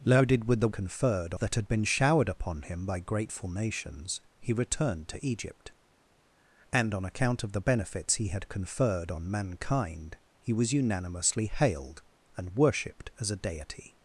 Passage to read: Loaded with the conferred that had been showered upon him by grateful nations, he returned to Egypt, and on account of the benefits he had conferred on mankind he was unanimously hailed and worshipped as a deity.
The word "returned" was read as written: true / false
true